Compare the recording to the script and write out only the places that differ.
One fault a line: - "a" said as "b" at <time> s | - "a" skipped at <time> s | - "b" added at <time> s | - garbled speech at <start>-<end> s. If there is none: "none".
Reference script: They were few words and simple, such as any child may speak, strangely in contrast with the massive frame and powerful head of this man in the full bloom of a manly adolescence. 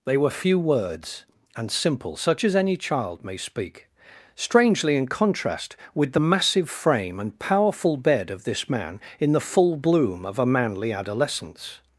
- "head" said as "bed" at 8.0 s